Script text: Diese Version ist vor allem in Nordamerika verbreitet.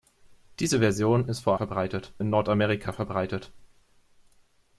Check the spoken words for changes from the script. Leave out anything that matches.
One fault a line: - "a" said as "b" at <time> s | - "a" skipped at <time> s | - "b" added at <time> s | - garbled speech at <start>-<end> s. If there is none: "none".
- "allem" said as "verbreitet" at 1.5 s